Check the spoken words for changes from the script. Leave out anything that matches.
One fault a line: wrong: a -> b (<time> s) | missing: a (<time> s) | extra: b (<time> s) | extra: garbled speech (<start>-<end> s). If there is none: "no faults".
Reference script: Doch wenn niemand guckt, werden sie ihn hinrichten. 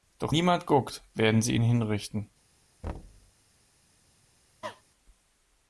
missing: wenn (0.3 s)